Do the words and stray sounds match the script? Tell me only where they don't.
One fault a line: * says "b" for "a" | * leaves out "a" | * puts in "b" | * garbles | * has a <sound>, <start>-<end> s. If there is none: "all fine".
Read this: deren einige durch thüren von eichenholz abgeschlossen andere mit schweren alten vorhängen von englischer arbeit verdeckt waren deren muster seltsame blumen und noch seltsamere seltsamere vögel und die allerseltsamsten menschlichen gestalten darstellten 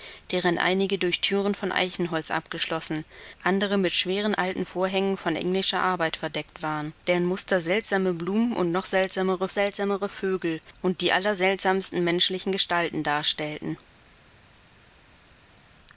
all fine